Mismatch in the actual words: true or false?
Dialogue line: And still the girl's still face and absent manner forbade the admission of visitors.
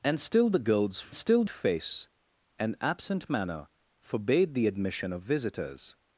false